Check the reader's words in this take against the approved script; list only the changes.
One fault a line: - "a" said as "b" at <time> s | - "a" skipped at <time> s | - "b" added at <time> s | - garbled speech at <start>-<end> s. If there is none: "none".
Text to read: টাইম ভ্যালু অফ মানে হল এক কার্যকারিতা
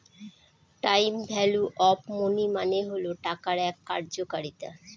- "মনি" added at 2.1 s
- "টাকার" added at 3.2 s